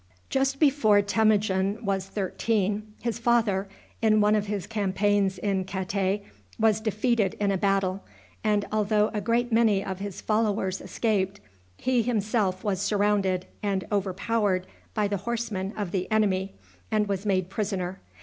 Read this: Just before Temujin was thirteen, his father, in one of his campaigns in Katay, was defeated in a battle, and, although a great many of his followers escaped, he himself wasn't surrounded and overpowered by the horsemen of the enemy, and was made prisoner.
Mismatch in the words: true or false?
true